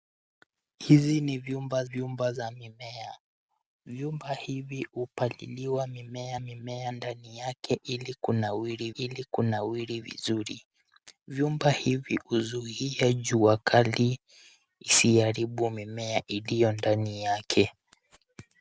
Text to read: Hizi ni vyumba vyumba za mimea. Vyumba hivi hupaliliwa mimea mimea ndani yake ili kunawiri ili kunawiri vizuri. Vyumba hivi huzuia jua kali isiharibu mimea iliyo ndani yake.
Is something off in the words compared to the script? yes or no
no